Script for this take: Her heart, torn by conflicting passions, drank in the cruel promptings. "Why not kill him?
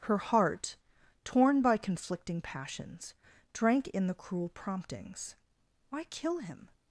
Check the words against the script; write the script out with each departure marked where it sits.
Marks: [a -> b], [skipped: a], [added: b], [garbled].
Her heart, torn by conflicting passions, drank in the cruel promptings. "Why [skipped: not] kill him?